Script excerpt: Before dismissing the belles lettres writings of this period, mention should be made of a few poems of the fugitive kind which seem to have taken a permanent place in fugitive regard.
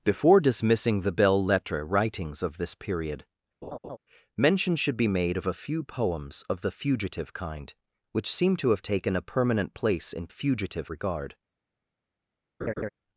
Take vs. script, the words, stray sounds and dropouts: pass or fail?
fail